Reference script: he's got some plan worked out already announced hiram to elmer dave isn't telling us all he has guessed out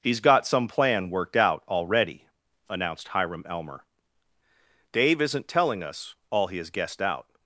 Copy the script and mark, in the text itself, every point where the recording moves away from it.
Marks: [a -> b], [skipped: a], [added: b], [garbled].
he's got some plan worked out already announced hiram [skipped: to] elmer dave isn't telling us all he has guessed out